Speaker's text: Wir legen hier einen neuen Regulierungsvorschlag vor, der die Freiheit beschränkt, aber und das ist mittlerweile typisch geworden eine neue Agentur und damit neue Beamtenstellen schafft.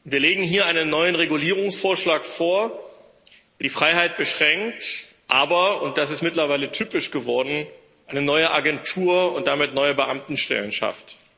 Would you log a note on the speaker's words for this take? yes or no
no